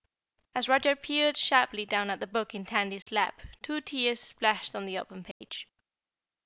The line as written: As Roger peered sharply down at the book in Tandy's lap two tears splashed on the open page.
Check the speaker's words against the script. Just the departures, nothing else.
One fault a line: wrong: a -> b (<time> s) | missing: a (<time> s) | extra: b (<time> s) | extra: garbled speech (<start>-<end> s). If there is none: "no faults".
no faults